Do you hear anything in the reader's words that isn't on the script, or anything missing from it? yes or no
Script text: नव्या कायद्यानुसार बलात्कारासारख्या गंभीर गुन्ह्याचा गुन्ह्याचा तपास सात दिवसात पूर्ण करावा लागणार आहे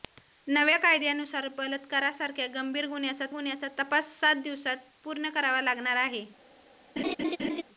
no